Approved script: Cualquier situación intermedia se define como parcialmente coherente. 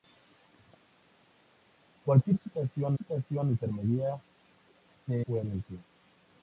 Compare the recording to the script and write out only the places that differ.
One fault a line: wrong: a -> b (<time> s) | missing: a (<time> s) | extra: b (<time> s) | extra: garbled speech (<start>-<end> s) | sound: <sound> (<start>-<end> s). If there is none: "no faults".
extra: situación (3.0 s)
missing: define como parcialmente (5.1 s)